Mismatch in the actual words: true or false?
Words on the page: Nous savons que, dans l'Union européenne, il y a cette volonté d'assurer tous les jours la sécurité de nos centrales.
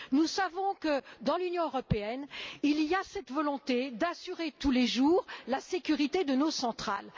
false